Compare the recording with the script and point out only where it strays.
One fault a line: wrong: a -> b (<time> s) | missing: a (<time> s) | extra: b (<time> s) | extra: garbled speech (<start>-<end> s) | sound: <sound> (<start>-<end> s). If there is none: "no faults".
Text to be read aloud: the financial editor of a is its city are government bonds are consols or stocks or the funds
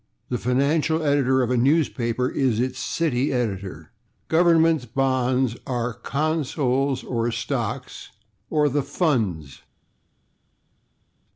extra: newspaper (1.6 s)
wrong: are -> editor (3.3 s)